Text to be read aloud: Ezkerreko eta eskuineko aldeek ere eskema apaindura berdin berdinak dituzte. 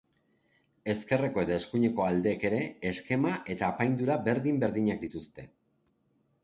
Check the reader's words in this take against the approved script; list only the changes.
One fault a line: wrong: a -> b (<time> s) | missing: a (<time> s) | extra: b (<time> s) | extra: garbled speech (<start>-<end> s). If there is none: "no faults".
extra: eta (3.6 s)